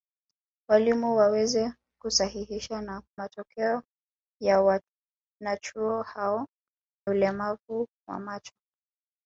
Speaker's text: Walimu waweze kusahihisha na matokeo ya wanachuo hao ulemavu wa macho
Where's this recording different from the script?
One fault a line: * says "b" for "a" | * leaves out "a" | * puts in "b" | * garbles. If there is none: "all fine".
all fine